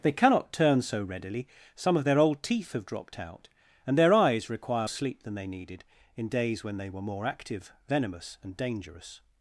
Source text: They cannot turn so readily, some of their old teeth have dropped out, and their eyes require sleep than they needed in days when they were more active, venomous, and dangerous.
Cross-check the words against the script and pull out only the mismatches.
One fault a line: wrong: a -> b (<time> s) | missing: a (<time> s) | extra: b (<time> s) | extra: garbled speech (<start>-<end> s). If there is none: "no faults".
no faults